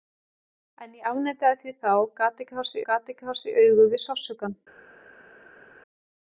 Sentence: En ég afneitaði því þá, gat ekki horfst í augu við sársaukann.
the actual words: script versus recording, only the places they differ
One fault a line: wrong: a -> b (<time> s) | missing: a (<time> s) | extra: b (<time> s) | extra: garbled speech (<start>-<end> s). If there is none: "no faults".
extra: gat ekki horfst (2.9 s)